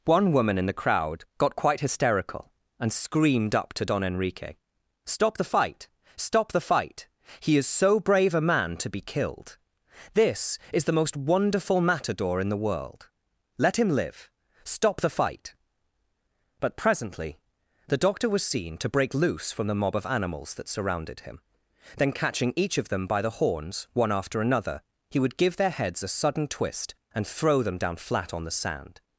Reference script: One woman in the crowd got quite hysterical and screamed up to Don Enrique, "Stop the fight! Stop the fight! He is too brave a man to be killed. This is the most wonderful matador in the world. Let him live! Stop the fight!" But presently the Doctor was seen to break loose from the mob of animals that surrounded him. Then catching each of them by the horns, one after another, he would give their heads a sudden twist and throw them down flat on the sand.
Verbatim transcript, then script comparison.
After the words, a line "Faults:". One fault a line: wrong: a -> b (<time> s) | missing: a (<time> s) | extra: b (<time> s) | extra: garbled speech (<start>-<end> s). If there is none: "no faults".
One woman in the crowd got quite hysterical and screamed up to Don Enrique, "Stop the fight! Stop the fight! He is so brave a man to be killed. This is the most wonderful matador in the world. Let him live! Stop the fight!" But presently the Doctor was seen to break loose from the mob of animals that surrounded him. Then catching each of them by the horns, one after another, he would give their heads a sudden twist and throw them down flat on the sand.
Faults:
wrong: too -> so (7.7 s)